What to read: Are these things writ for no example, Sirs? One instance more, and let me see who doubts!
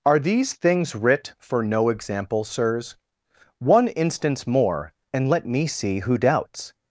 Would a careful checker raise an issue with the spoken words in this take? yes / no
no